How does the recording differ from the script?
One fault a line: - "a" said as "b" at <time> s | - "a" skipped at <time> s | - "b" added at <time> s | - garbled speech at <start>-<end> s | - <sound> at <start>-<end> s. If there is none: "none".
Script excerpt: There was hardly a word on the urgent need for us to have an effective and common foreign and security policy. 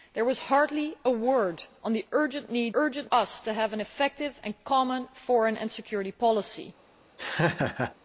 - "for" said as "urgent" at 2.7 s
- laugh at 7.2-7.9 s